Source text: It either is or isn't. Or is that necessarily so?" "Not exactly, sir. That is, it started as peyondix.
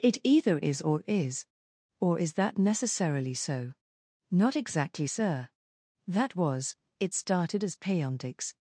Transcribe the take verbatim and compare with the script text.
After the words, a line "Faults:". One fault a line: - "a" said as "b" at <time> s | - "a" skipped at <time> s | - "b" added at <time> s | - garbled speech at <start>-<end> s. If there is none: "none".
It either is or is. Or is that necessarily so?" "Not exactly, sir. That was, it started as peyondix.
Faults:
- "isn't" said as "is" at 1.1 s
- "is" said as "was" at 6.3 s